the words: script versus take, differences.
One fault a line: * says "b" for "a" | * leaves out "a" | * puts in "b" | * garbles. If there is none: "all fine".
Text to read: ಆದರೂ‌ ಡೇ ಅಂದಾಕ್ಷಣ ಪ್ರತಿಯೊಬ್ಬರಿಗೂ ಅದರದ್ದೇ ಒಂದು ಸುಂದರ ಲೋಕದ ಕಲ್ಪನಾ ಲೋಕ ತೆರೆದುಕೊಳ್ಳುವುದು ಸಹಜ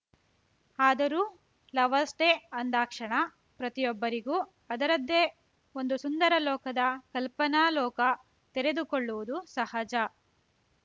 * puts in "ಲವರ್ಸ್"